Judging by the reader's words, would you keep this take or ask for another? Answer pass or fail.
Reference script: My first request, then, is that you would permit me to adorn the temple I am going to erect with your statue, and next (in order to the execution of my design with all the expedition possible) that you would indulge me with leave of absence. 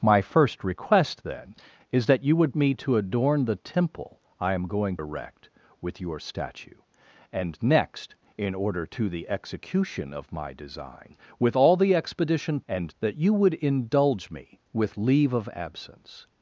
fail